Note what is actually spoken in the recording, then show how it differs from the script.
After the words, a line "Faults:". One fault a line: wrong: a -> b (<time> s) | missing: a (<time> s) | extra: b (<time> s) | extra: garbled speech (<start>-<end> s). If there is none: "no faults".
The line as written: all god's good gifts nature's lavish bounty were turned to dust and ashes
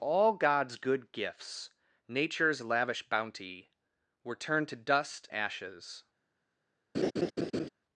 all god's good gifts nature's lavish bounty were turned to dust ashes
Faults:
missing: and (5.3 s)